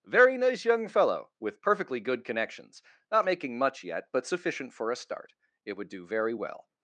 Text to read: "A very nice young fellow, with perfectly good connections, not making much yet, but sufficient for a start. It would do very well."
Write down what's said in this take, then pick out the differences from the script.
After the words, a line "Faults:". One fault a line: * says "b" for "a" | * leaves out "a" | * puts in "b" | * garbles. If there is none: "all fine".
very nice young fellow, with perfectly good connections, not making much yet, but sufficient for a start. It would do very well."
Faults:
* leaves out "A"